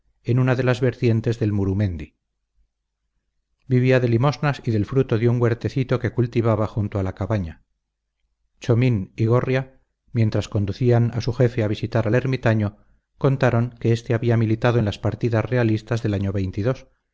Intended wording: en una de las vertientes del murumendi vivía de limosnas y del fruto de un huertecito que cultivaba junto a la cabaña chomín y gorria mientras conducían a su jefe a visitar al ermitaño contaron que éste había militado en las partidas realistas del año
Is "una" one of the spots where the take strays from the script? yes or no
no